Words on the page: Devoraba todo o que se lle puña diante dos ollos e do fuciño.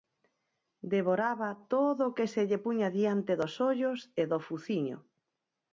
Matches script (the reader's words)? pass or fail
pass